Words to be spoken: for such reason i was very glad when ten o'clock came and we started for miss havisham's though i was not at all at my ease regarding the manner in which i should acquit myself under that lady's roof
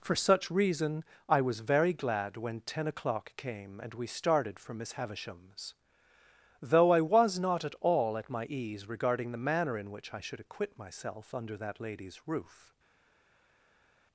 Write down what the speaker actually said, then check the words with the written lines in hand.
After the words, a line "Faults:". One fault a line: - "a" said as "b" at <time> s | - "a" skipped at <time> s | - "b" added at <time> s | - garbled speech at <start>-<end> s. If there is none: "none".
for such reason i was very glad when ten o'clock came and we started for miss havisham's though i was not at all at my ease regarding the manner in which i should acquit myself under that lady's roof
Faults:
none